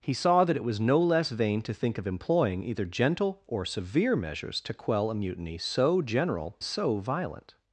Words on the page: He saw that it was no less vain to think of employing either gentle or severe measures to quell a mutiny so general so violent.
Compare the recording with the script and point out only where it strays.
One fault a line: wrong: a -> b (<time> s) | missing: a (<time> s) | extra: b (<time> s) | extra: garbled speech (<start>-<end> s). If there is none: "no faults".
no faults